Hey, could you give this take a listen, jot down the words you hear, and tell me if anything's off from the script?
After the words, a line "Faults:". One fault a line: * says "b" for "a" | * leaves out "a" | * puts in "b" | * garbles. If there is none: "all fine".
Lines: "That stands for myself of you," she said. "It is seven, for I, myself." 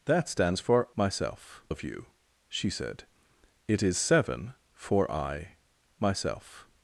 "That stands for myself of you," she said. "It is seven, for I, myself."
Faults:
all fine